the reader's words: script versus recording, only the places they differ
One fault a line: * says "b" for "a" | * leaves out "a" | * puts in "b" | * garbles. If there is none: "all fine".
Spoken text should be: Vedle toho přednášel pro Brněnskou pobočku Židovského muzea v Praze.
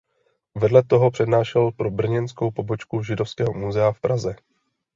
all fine